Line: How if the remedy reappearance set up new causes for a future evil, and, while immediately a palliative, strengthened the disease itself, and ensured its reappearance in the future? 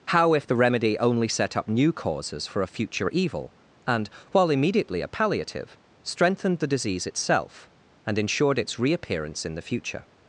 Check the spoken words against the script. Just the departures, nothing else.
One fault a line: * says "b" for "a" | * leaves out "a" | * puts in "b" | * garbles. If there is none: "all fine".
* says "only" for "reappearance"